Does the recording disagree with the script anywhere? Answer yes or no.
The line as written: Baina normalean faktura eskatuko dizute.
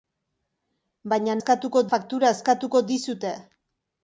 yes